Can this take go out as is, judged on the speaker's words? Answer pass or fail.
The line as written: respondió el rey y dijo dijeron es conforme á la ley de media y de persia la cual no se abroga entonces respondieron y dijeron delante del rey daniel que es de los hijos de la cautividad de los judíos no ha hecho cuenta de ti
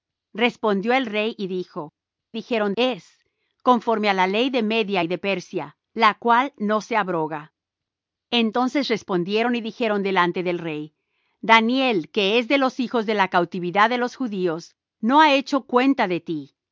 pass